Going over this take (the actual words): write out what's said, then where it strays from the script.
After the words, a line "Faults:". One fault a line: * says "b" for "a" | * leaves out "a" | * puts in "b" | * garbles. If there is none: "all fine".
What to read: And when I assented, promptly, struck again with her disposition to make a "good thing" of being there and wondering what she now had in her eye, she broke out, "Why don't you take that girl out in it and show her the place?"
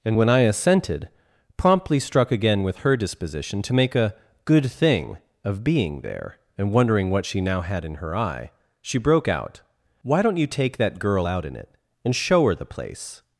And when I assented, promptly, struck again with her disposition to make a "good thing" of being there and wondering what she now had in her eye, she broke out, "Why don't you take that girl out in it and show her the place?"
Faults:
all fine